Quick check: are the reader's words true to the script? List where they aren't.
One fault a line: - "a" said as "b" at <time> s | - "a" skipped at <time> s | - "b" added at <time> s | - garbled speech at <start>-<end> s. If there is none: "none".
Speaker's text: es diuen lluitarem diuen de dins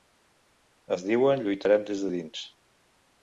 - "diuen" said as "des" at 1.9 s